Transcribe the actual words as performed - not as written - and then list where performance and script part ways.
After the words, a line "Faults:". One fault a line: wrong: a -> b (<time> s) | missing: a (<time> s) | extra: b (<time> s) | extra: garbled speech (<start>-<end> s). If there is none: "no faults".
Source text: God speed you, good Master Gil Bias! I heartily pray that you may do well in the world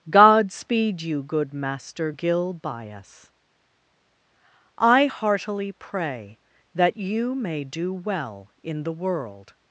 God speed you, good Master Gil Bias! I heartily pray that you may do well in the world
Faults:
no faults